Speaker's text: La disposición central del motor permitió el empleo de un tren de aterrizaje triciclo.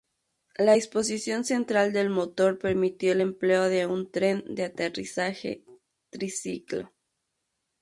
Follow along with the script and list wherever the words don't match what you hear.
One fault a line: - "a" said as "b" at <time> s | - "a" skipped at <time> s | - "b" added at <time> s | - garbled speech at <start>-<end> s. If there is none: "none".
none